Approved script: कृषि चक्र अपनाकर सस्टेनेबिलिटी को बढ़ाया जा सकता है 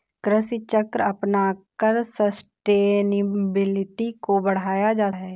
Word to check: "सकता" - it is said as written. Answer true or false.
false